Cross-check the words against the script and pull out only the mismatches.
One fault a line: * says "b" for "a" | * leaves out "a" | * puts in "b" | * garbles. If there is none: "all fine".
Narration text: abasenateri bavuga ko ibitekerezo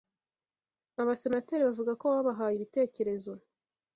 * puts in "babahaye"